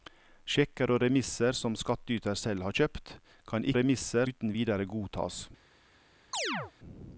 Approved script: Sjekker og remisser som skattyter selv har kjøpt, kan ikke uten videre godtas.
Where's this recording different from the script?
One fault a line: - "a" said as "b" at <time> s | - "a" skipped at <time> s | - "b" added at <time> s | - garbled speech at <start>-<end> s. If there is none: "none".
- "ikke" said as "remisser" at 3.8 s